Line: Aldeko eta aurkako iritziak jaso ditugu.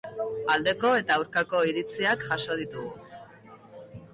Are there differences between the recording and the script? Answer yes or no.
no